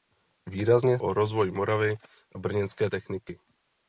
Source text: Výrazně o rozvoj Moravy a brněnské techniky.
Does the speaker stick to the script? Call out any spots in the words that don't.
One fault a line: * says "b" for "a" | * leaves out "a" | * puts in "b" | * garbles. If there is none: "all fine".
all fine